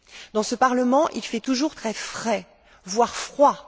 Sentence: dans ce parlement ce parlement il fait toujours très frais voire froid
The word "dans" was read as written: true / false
true